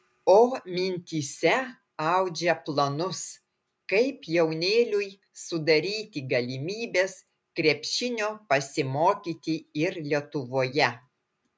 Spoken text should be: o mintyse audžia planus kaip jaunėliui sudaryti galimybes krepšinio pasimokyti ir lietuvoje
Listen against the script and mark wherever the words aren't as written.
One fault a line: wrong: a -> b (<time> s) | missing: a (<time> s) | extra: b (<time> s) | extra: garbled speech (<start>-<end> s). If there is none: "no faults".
no faults